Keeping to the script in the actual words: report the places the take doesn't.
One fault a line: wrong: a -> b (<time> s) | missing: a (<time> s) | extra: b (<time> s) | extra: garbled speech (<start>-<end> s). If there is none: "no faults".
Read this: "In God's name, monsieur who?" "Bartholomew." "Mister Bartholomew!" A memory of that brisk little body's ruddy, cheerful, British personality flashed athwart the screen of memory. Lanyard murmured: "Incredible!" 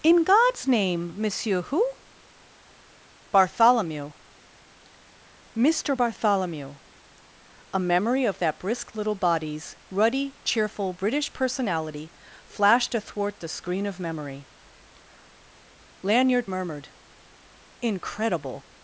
no faults